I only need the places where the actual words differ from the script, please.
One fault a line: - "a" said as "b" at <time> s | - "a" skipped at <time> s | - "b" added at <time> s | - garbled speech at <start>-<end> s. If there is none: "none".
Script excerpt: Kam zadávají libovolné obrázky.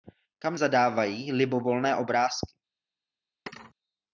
none